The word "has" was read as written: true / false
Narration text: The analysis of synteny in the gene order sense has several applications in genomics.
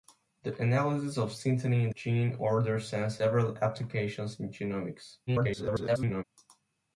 false